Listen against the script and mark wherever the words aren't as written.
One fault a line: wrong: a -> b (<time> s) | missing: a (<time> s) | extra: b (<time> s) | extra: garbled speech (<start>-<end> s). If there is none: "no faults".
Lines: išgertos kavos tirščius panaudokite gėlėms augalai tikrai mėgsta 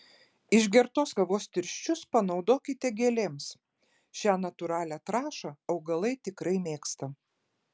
extra: šią natūralią trąšą (4.2 s)